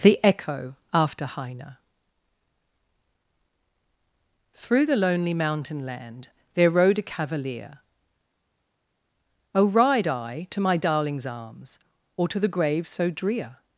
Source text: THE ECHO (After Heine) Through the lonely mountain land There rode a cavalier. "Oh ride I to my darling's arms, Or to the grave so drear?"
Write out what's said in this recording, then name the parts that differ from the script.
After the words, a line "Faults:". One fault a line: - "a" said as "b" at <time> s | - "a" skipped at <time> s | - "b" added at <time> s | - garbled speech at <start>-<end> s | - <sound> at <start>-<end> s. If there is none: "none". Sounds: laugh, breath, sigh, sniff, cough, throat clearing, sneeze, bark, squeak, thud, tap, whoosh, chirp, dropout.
THE ECHO (After Heine) Through the lonely mountain land There rode a cavalier. "Oh ride I to my darling's arms, Or to the grave so drear?"
Faults:
none